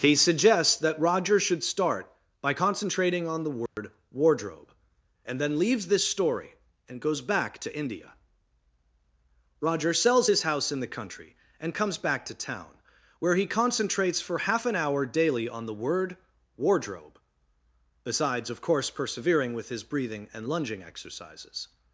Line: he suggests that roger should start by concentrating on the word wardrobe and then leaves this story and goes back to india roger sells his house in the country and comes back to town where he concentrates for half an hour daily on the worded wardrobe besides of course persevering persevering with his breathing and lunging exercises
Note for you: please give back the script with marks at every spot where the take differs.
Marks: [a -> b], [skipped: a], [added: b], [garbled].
he suggests that roger should start by concentrating on the word wardrobe and then leaves this story and goes back to india roger sells his house in the country and comes back to town where he concentrates for half an hour daily on the [worded -> word] wardrobe besides of course persevering [skipped: persevering] with his breathing and lunging exercises